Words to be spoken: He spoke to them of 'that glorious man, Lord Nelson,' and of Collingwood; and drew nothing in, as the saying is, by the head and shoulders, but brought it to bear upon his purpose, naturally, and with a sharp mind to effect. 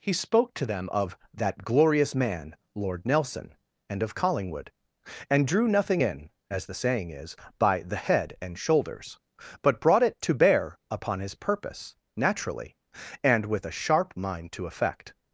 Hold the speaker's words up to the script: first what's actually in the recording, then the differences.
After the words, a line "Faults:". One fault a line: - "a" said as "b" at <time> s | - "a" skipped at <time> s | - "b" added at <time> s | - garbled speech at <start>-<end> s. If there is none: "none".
He spoke to them of 'that glorious man, Lord Nelson,' and of Collingwood; and drew nothing in, as the saying is, by the head and shoulders, but brought it to bear upon his purpose, naturally, and with a sharp mind to effect.
Faults:
none